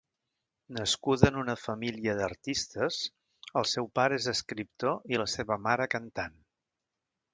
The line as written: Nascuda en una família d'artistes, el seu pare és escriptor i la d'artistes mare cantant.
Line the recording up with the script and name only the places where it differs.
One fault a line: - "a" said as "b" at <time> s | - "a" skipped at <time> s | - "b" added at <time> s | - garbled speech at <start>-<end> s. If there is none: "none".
- "d'artistes" said as "seva" at 5.3 s